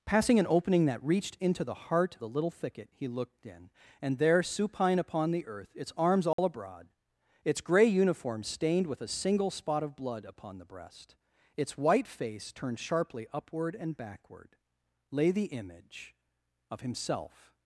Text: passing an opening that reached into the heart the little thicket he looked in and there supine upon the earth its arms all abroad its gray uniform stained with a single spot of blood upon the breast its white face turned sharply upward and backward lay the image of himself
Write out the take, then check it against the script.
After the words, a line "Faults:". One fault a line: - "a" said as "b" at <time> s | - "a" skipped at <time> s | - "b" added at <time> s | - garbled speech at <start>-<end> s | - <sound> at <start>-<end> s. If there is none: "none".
passing an opening that reached into the heart the little thicket he looked in and there supine upon the earth its arms all abroad its gray uniform stained with a single spot of blood upon the breast its white face turned sharply upward and backward lay the image of himself
Faults:
- dropout at 6.3-6.4 s